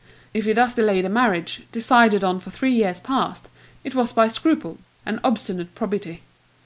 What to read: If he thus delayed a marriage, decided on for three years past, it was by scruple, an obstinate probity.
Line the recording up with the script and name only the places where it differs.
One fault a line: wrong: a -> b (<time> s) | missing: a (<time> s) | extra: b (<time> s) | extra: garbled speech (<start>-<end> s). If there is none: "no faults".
no faults